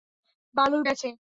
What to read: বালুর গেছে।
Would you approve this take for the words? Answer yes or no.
yes